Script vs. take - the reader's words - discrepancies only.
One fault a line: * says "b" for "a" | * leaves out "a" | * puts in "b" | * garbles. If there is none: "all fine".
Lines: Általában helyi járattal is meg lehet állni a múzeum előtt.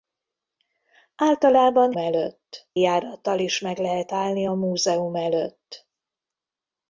* says "előtt" for "helyi"